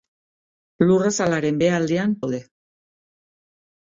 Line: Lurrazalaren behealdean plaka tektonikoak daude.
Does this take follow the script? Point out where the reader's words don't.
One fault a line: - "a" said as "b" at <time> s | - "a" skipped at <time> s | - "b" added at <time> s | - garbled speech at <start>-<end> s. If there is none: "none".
- "plaka tektonikoak" skipped at 2.2 s